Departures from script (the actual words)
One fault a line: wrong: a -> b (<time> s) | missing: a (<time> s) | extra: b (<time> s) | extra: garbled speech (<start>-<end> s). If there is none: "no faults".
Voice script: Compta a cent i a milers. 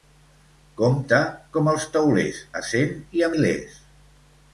extra: com els teulers (1.6 s)